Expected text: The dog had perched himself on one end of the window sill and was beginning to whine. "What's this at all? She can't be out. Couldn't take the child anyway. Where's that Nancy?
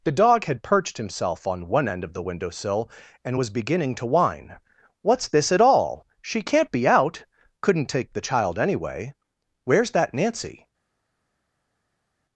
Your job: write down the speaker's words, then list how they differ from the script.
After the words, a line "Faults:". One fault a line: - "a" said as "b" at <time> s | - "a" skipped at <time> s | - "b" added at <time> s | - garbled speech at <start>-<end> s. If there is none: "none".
The dog had perched himself on one end of the window sill and was beginning to whine. "What's this at all? She can't be out. Couldn't take the child anyway. Where's that Nancy?
Faults:
none